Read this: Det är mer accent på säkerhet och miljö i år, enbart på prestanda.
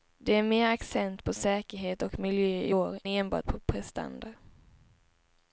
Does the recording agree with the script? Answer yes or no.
yes